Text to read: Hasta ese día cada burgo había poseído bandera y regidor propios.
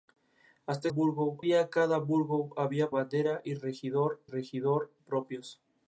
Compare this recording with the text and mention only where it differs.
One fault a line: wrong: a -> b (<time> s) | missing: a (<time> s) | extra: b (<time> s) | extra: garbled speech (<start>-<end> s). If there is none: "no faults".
wrong: ese -> burgo (0.9 s)
missing: poseído (2.9 s)
extra: regidor (4.2 s)